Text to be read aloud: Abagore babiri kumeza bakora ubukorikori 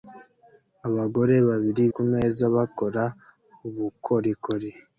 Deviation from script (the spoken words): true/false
false